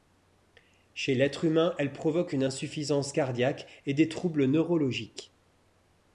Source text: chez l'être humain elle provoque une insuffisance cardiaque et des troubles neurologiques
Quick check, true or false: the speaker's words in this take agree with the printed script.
true